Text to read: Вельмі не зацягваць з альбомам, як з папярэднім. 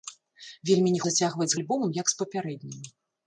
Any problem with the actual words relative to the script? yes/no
no